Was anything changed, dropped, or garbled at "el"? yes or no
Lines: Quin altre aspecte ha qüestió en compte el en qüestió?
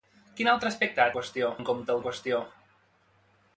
no